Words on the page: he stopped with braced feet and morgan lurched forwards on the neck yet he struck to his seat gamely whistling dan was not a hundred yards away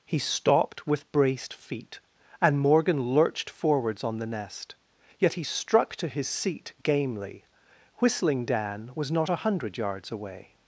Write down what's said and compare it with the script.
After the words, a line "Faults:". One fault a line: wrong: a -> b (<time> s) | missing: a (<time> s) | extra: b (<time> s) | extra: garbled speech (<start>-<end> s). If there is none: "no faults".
he stopped with braced feet and morgan lurched forwards on the nest yet he struck to his seat gamely whistling dan was not a hundred yards away
Faults:
wrong: neck -> nest (4.2 s)